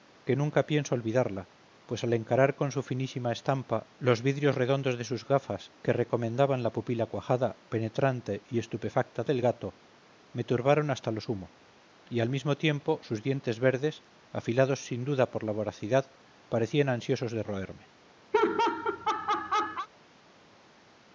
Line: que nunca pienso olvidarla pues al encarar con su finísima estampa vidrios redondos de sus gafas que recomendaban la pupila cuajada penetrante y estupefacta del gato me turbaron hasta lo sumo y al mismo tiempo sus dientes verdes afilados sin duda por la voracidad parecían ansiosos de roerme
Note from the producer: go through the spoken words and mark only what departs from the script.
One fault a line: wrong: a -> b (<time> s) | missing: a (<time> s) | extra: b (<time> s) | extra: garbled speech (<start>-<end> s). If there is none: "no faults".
extra: los (4.0 s)